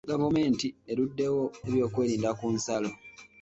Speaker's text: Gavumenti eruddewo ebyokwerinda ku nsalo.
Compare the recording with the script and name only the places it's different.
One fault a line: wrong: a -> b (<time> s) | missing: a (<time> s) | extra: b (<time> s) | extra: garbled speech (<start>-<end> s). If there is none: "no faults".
no faults